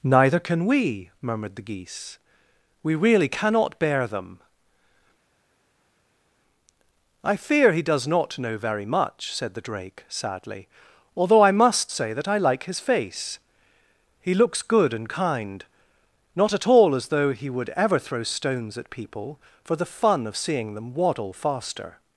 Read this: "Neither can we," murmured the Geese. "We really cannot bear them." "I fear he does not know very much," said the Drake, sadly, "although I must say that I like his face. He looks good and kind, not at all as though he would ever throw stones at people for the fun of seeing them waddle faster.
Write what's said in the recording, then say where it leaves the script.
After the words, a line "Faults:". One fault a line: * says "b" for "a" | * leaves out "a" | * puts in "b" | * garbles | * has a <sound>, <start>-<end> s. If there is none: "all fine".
"Neither can we," murmured the Geese. "We really cannot bear them." "I fear he does not know very much," said the Drake, sadly, "although I must say that I like his face. He looks good and kind, not at all as though he would ever throw stones at people for the fun of seeing them waddle faster.
Faults:
all fine